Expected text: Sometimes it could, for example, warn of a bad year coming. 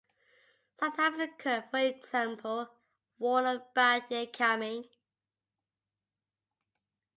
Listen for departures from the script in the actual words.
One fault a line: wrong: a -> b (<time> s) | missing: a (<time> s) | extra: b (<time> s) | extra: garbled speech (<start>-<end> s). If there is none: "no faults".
no faults